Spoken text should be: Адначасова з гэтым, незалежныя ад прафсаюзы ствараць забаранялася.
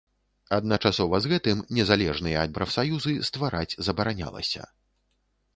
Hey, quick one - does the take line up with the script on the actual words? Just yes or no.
yes